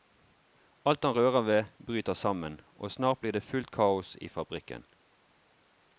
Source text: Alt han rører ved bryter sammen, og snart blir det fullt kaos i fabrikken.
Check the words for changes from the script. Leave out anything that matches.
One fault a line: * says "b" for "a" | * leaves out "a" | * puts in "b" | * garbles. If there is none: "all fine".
all fine